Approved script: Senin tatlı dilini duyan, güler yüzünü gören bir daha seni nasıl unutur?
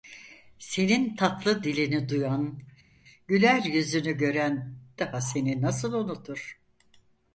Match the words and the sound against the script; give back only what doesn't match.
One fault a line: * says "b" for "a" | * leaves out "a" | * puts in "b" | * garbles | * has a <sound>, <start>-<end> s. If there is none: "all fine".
* leaves out "bir"